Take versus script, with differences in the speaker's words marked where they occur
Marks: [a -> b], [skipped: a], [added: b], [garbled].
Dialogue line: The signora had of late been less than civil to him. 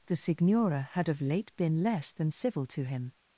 The signora had of late been less than civil to him.